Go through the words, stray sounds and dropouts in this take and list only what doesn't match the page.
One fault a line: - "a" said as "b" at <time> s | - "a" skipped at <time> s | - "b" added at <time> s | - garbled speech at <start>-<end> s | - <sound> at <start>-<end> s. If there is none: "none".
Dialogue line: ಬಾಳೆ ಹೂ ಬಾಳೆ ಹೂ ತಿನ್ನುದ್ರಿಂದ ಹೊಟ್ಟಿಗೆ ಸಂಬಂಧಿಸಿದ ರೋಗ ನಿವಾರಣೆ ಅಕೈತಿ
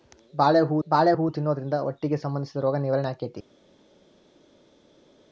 none